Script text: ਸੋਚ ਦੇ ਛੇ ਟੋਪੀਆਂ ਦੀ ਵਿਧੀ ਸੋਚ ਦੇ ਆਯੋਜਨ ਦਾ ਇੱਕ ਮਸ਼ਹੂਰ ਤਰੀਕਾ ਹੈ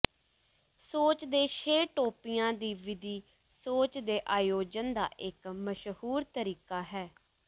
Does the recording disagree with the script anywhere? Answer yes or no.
no